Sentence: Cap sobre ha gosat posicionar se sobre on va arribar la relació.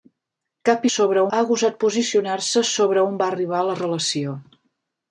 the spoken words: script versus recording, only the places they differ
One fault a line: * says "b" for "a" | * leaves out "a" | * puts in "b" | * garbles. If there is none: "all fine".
all fine